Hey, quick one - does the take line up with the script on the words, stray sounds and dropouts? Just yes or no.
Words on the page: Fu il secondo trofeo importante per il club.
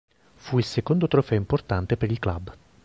yes